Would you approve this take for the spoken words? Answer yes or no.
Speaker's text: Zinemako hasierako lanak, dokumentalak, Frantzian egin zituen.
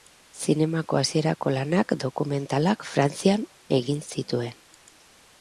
yes